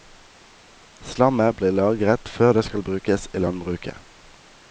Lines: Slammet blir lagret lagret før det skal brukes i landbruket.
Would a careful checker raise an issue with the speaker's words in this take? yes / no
yes